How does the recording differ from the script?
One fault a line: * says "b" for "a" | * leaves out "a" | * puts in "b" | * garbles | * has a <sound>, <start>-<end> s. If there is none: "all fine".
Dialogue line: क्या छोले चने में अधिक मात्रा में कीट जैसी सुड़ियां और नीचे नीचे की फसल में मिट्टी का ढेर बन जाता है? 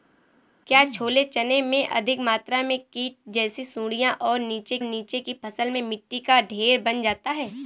all fine